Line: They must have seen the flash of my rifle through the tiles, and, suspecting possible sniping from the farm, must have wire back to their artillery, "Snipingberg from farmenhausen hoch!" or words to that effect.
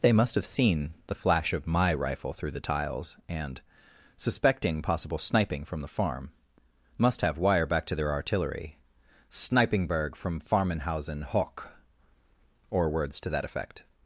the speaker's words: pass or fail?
pass